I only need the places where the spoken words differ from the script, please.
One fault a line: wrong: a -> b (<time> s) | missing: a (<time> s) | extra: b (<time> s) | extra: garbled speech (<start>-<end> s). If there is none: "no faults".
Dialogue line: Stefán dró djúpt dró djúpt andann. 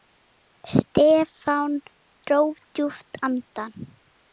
missing: dró djúpt (3.1 s)